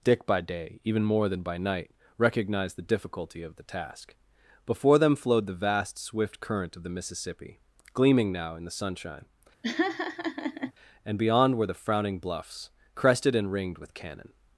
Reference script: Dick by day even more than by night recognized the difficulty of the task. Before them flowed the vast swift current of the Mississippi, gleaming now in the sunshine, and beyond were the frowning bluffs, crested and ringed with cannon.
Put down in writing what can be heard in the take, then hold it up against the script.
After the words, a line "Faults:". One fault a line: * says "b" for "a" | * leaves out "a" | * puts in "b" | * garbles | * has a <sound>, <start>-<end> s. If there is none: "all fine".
Dick by day even more than by night recognized the difficulty of the task. Before them flowed the vast swift current of the Mississippi, gleaming now in the sunshine, and beyond were the frowning bluffs, crested and ringed with cannon.
Faults:
* has a laugh, 9.6-10.7 s